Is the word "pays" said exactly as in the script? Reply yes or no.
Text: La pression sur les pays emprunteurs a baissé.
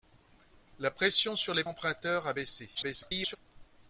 no